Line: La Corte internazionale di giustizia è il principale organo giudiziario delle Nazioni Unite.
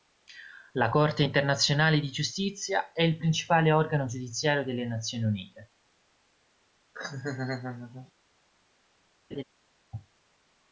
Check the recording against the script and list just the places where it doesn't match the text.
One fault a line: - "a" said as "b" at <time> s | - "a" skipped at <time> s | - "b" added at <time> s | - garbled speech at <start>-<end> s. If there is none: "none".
none